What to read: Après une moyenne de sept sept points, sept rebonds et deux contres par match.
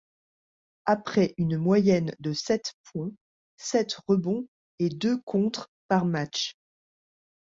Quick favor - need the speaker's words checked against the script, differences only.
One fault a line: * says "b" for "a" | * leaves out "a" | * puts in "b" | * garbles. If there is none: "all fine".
* leaves out "sept"